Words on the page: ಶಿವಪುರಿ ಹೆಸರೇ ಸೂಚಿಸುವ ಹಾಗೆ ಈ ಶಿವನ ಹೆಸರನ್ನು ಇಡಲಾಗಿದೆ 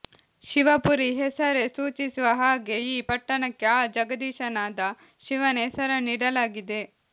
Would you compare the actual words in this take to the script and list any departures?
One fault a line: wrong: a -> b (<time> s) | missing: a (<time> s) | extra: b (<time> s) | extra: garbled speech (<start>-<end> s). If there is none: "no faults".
extra: ಪಟ್ಟಣಕ್ಕೆ ಆ ಜಗದೀಶನಾದ (3.1 s)